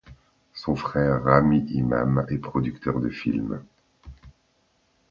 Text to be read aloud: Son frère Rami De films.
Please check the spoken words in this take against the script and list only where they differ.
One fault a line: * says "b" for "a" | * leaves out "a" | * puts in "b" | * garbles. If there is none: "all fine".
* puts in "Imam est producteur"